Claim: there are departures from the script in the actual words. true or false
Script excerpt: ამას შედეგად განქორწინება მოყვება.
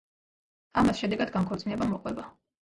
false